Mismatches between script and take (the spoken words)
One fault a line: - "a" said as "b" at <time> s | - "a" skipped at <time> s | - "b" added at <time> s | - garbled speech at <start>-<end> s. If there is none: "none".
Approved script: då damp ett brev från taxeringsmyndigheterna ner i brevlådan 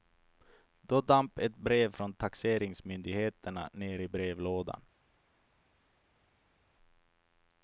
none